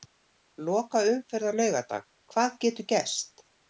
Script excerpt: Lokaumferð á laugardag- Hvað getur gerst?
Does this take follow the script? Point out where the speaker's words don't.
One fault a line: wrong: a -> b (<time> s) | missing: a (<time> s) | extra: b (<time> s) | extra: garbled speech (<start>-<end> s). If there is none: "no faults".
no faults